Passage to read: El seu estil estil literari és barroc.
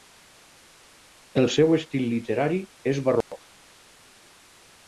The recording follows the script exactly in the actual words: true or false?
false